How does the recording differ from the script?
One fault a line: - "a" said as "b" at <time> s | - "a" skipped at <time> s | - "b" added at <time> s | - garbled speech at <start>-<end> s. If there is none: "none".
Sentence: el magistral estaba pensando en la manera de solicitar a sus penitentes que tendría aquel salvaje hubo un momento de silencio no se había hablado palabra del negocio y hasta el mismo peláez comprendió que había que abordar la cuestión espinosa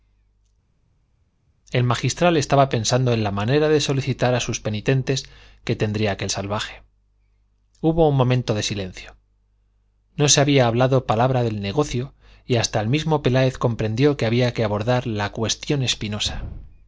none